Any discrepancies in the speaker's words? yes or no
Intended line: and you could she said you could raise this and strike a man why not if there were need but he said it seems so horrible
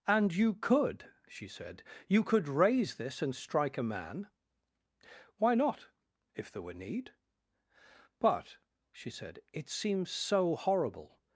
yes